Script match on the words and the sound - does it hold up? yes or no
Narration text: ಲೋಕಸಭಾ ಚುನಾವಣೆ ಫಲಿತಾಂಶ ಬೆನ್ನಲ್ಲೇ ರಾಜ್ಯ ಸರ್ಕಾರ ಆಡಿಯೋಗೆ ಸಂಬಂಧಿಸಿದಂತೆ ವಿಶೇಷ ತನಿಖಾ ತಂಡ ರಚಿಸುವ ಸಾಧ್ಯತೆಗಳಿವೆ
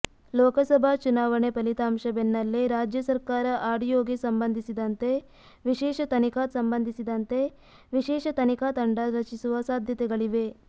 no